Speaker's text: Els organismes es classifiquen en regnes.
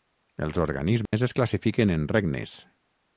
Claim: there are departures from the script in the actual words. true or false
false